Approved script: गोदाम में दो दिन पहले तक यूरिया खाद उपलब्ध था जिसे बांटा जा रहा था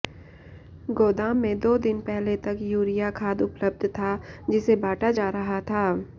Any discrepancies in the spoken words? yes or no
no